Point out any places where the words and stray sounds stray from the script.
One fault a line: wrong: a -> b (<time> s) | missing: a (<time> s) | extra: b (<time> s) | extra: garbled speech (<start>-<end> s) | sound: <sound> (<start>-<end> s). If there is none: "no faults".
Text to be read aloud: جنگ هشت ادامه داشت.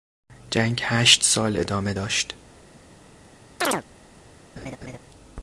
extra: سال (1.2 s)
sound: chirp (3.6-3.8 s)
sound: laugh (4.6-5.0 s)